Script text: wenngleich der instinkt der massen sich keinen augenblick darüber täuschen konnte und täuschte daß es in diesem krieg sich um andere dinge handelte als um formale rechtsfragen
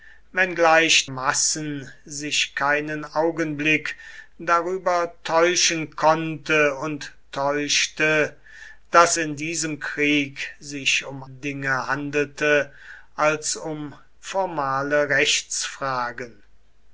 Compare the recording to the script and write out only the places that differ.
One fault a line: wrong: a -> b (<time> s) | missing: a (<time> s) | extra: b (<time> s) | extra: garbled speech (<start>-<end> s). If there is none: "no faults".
missing: der instinkt der (1.1 s)
missing: es (9.2 s)
missing: andere (11.2 s)